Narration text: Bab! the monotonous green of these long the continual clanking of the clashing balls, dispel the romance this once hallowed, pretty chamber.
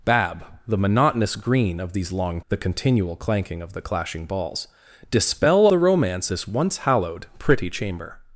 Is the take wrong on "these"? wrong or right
right